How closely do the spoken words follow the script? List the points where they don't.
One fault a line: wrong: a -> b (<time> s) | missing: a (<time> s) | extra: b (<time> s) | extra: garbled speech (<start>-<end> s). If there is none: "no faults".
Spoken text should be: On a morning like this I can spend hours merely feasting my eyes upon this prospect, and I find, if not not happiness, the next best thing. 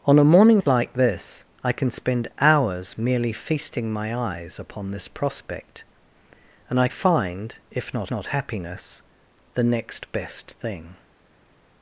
no faults